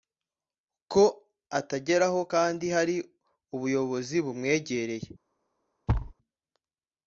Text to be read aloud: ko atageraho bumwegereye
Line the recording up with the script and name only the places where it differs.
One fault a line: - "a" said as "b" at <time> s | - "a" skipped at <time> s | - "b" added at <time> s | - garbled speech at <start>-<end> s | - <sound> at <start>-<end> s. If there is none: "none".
- "kandi hari ubuyobozi" added at 2.3 s
- thud at 5.9-6.1 s